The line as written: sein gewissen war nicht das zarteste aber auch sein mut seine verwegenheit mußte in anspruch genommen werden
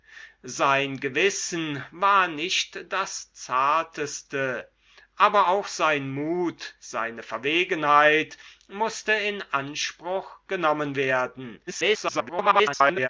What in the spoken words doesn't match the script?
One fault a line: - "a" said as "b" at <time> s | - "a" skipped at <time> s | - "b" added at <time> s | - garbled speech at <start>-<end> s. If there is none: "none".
- garbled speech at 11.7-13.1 s